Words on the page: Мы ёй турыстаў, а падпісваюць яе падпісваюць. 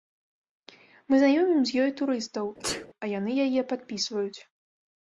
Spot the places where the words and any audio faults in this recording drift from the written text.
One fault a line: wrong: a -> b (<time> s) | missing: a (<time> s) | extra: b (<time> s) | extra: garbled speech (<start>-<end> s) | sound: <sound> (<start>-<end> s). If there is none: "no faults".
extra: знаёмім з (1.2 s)
sound: sneeze (2.6-2.9 s)
wrong: падпісваюць -> яны (3.2 s)